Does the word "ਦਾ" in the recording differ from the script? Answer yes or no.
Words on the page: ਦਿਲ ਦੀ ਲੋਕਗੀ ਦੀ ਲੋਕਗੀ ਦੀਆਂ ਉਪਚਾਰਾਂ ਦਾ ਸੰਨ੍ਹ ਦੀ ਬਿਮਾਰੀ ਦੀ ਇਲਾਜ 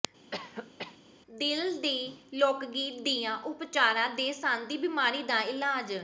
yes